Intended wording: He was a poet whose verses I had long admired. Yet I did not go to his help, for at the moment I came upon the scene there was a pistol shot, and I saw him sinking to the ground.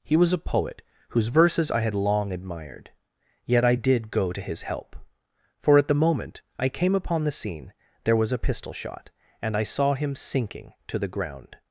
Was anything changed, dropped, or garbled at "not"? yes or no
yes